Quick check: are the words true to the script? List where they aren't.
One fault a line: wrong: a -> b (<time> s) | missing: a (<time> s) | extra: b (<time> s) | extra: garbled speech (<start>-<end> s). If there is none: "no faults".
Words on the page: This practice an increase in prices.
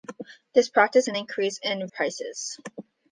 no faults